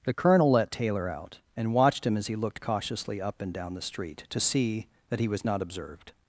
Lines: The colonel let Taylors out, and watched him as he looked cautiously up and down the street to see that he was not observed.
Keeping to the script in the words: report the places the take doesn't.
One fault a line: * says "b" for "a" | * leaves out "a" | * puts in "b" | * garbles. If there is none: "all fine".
* says "Taylor" for "Taylors"